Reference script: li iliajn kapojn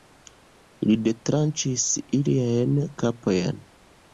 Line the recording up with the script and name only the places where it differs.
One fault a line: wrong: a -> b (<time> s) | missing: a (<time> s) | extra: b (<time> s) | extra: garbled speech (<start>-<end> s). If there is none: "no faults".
extra: detranĉis (1.1 s)